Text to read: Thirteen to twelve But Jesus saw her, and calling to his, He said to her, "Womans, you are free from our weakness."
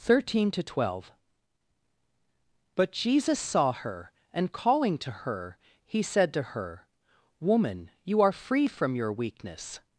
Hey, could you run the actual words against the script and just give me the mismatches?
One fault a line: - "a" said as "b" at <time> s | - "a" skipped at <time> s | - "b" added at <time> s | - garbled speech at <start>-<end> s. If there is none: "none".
- "his" said as "her" at 5.1 s
- "Womans" said as "Woman" at 7.4 s
- "our" said as "your" at 9.0 s